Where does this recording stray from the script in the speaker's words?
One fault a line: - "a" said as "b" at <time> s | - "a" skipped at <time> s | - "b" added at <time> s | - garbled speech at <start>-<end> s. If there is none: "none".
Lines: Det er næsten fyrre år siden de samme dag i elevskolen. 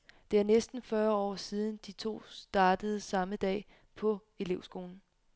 - "to startede" added at 1.9 s
- "i" said as "på" at 3.9 s